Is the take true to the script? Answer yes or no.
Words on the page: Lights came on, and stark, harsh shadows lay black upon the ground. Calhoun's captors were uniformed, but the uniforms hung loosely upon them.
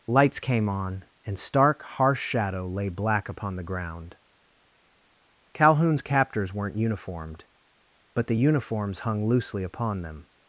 no